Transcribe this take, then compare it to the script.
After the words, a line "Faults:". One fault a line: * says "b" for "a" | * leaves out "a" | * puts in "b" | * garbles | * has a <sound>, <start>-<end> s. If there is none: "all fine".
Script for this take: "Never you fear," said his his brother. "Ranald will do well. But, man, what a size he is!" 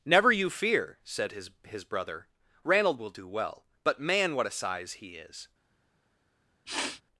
"Never you fear," said his his brother. "Ranald will do well. But, man, what a size he is!"
Faults:
* has a sniff, 6.7-7.0 s